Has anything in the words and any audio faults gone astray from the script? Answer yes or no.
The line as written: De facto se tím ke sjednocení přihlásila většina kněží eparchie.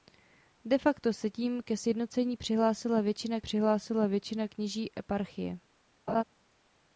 yes